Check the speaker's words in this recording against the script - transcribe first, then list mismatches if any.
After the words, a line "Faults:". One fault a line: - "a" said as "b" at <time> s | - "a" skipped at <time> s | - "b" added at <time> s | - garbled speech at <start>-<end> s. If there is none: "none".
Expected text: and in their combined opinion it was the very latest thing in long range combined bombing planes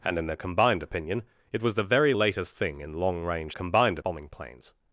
and in their combined opinion it was the very latest thing in long range combined bombing planes
Faults:
none